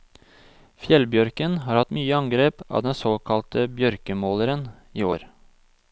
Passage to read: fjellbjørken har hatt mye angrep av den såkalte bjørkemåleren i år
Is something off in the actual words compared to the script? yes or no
no